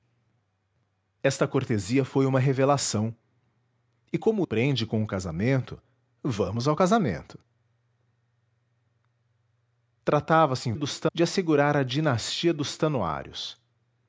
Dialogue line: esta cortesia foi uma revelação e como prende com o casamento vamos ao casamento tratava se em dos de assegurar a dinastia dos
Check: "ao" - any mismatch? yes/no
no